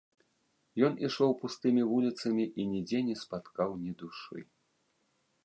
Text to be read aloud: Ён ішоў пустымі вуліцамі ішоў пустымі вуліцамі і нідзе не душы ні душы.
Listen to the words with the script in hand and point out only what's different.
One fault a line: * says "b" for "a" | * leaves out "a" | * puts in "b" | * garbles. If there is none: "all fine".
* leaves out "ішоў пустымі вуліцамі"
* says "спаткаў" for "душы"